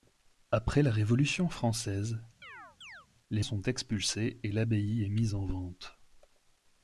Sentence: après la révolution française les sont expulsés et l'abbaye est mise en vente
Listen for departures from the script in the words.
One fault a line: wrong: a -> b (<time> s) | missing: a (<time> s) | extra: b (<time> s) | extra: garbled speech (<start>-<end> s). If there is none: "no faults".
no faults